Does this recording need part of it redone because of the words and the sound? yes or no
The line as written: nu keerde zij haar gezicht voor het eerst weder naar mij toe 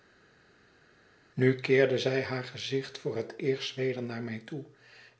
no